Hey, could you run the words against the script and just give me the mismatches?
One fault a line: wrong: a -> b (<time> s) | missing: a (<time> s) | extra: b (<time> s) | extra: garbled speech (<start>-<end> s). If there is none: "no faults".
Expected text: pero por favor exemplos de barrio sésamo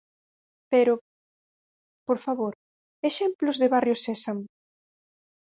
no faults